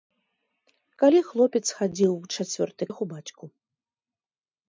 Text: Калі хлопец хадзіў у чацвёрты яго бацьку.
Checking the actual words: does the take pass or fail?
pass